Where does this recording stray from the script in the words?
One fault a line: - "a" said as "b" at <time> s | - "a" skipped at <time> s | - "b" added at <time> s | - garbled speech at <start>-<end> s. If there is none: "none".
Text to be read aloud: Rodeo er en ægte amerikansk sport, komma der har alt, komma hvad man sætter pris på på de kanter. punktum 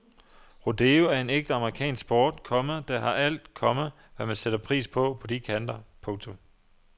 none